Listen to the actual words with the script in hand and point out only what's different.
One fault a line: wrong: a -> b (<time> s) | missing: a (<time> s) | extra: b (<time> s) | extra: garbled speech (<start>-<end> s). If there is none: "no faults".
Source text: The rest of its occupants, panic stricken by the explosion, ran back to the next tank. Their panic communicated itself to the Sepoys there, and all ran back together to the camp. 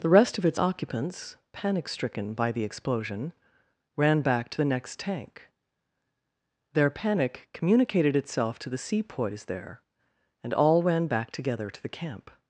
no faults